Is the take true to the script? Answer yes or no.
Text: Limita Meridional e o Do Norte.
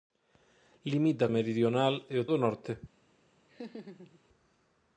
yes